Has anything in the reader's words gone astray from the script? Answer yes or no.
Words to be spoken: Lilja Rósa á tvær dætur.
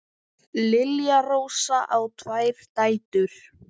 no